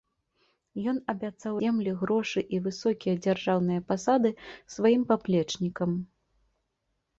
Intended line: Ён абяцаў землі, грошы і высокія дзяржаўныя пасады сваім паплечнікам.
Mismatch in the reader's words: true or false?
false